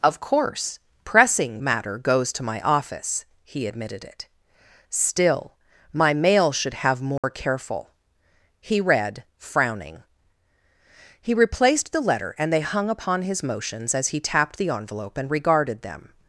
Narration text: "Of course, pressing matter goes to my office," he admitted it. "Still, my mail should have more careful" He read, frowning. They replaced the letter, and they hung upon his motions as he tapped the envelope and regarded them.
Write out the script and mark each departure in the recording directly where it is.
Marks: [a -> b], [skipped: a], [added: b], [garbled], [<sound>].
"Of course, pressing matter goes to my office," he admitted it. "Still, my mail should have more [dropout] careful" He read, frowning. [They -> He] replaced the letter, and they hung upon his motions as he tapped the envelope and regarded them.